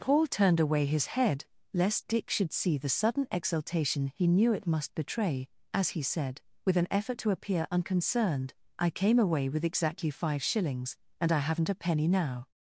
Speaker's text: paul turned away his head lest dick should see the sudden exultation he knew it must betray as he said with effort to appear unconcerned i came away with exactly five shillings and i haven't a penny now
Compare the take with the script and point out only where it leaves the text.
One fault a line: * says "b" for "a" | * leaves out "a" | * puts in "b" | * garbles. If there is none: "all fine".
* puts in "an"